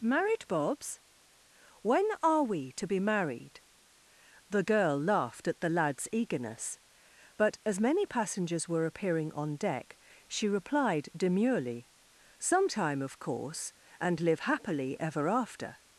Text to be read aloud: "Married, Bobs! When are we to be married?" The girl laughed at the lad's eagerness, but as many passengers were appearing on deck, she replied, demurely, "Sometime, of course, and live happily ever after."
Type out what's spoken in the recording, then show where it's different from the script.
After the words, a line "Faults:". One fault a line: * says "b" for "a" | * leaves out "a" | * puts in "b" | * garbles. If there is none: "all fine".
"Married, Bobs! When are we to be married?" The girl laughed at the lad's eagerness, but as many passengers were appearing on deck, she replied, demurely, "Sometime, of course, and live happily ever after."
Faults:
all fine